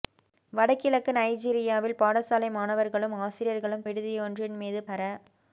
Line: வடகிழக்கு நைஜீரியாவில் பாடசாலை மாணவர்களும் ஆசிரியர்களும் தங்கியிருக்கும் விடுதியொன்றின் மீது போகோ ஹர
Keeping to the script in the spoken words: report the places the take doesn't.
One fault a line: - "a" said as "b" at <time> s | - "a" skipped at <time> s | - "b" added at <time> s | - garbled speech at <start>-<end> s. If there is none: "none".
- "தங்கியிருக்கும்" skipped at 3.9 s
- "போகோ" skipped at 4.8 s